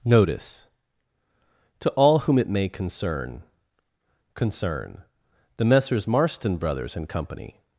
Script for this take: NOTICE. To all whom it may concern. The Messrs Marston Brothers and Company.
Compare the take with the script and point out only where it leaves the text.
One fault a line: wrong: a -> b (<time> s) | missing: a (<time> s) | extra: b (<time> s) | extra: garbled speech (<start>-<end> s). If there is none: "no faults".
extra: concern (4.3 s)